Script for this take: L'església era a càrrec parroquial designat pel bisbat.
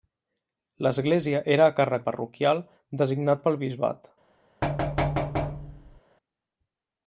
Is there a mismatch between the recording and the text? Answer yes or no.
no